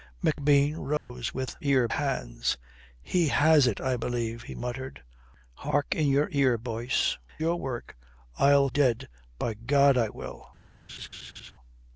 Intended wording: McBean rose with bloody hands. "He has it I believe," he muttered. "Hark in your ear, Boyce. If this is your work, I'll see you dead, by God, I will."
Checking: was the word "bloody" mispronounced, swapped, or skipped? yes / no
yes